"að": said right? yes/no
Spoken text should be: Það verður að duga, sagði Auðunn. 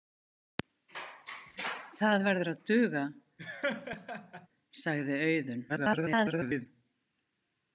yes